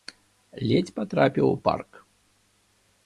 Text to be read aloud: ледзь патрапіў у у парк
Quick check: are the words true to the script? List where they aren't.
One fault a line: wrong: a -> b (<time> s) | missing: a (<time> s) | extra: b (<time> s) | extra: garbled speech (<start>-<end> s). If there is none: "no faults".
missing: у (1.6 s)